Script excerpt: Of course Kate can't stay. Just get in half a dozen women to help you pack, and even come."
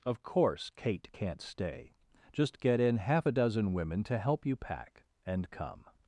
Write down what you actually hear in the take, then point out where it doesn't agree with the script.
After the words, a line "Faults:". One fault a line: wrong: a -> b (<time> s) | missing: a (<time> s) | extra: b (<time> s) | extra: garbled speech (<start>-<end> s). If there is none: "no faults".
Of course Kate can't stay. Just get in half a dozen women to help you pack, and come."
Faults:
missing: even (5.5 s)